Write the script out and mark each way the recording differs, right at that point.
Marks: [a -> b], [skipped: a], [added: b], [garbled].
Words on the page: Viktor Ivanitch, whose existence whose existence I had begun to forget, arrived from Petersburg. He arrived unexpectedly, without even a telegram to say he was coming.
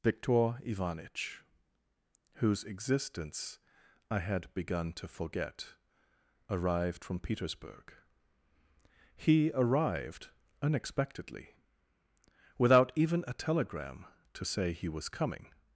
Viktor Ivanitch, whose existence [skipped: whose existence] I had begun to forget, arrived from Petersburg. He arrived unexpectedly, without even a telegram to say he was coming.